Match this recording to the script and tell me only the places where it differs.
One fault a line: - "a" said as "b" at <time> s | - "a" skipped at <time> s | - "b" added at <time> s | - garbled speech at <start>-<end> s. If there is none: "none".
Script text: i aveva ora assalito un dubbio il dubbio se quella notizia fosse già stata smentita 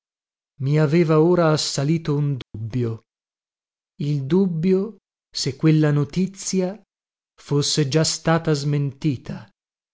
none